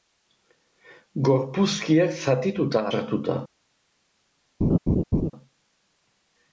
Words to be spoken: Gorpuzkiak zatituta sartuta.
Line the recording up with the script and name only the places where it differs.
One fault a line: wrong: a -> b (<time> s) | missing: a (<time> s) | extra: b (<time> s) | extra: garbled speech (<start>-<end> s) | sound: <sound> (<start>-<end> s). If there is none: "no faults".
sound: laugh (4.6-5.3 s)